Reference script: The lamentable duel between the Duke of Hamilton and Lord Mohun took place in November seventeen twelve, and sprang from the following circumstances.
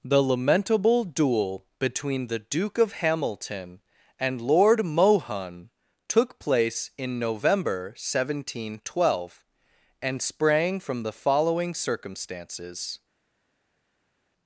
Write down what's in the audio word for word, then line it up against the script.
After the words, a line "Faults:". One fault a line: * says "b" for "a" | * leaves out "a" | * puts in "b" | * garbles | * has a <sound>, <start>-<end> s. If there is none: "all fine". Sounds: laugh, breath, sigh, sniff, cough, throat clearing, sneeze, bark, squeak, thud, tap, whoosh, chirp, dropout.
The lamentable duel between the Duke of Hamilton and Lord Mohun took place in November seventeen twelve, and sprang from the following circumstances.
Faults:
all fine